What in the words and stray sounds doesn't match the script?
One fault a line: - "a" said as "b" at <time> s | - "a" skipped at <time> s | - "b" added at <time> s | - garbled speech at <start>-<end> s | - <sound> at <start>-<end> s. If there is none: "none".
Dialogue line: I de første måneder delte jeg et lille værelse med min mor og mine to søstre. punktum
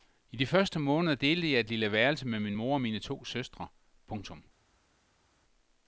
none